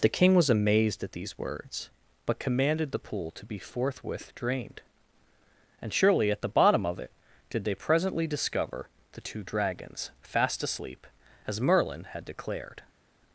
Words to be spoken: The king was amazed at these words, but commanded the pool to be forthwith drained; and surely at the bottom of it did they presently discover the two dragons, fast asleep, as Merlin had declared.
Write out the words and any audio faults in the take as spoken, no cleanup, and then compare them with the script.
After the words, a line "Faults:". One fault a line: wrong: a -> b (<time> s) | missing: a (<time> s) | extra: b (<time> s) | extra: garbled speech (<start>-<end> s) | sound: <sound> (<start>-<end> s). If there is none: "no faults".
The king was amazed at these words, but commanded the pool to be forthwith drained; and surely at the bottom of it did they presently discover the two dragons, fast asleep, as Merlin had declared.
Faults:
no faults